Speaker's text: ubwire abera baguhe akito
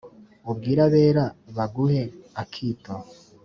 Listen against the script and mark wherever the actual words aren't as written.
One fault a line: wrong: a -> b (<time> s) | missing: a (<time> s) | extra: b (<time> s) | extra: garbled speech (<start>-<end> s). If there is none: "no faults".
no faults